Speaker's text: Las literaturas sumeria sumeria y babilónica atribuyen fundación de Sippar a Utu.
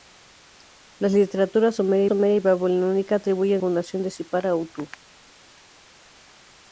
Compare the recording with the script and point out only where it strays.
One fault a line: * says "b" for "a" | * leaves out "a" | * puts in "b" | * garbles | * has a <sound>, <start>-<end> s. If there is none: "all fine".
all fine